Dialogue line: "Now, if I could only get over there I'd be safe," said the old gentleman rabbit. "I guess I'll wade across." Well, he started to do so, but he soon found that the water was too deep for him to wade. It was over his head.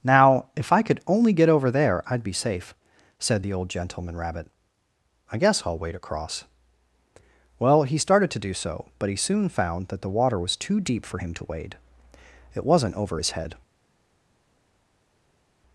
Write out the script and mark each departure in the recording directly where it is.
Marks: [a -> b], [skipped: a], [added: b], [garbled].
"Now, if I could only get over there I'd be safe," said the old gentleman rabbit. "I guess I'll wade across." Well, he started to do so, but he soon found that the water was too deep for him to wade. It [was -> wasn't] over his head.